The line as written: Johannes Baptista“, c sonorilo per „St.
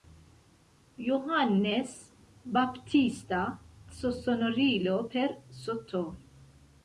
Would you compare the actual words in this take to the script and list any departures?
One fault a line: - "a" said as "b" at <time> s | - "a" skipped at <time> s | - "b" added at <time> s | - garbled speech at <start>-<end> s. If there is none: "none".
none